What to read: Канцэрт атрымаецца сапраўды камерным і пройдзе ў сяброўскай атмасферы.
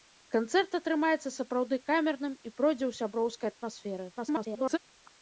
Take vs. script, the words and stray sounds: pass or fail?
fail